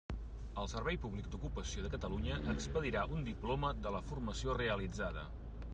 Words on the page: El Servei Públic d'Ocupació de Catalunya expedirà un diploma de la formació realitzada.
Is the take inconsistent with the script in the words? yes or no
no